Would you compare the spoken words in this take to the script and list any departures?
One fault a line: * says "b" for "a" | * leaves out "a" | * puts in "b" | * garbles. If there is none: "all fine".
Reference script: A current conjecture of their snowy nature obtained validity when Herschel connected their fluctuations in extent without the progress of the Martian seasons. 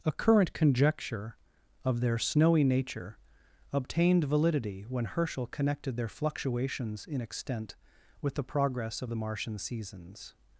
* says "with" for "without"